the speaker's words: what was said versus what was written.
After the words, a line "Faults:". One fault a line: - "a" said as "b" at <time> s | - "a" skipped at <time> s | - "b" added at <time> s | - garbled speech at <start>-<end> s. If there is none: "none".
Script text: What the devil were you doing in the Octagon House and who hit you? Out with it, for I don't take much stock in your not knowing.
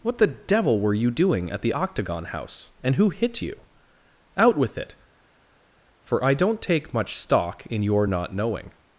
What the devil were you doing at the Octagon House and who hit you? Out with it, for I don't take much stock in your not knowing.
Faults:
- "in" said as "at" at 1.5 s